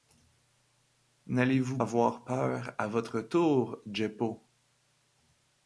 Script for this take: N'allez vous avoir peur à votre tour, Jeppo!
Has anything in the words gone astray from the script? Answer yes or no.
no